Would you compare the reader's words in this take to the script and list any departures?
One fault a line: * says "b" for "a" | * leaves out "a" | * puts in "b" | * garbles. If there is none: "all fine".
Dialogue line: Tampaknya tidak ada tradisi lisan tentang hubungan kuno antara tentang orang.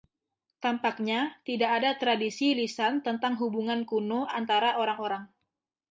* says "orang" for "tentang"